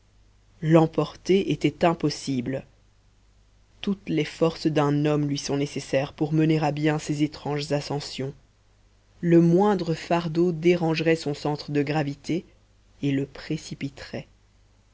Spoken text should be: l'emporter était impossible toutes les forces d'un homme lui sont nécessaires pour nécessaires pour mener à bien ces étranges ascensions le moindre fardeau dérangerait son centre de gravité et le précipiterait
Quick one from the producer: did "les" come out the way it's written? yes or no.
yes